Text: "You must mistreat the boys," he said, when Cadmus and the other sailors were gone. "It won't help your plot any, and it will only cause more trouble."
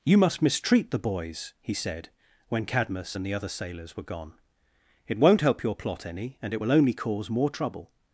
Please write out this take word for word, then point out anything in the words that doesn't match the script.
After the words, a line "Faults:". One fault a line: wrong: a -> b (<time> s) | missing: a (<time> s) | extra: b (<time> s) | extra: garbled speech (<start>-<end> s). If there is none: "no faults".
"You must mistreat the boys," he said, when Cadmus and the other sailors were gone. "It won't help your plot any, and it will only cause more trouble."
Faults:
no faults